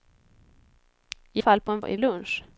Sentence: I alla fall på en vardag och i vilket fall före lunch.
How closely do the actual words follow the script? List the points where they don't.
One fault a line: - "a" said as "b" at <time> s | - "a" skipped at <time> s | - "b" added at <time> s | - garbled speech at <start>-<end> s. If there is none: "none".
- "alla" skipped at 1.4 s
- "vardag" skipped at 1.8 s
- "vilket fall före" skipped at 2.0 s